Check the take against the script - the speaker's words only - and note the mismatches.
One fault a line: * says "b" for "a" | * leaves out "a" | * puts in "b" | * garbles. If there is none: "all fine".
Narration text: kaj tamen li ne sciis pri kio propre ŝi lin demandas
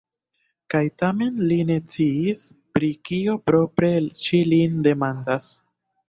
all fine